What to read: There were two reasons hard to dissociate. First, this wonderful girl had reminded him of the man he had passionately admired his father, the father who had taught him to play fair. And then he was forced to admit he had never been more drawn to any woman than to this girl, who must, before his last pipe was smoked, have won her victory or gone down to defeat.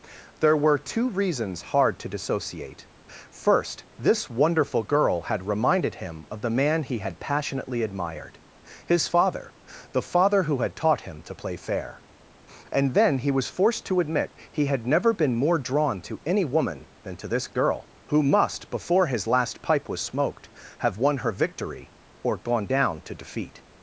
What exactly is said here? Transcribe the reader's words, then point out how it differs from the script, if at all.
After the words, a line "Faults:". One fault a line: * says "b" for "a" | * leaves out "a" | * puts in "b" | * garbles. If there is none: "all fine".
There were two reasons hard to dissociate. First, this wonderful girl had reminded him of the man he had passionately admired his father, the father who had taught him to play fair. And then he was forced to admit he had never been more drawn to any woman than to this girl, who must, before his last pipe was smoked, have won her victory or gone down to defeat.
Faults:
all fine